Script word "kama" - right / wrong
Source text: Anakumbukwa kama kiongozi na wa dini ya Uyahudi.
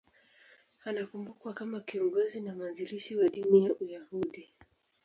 right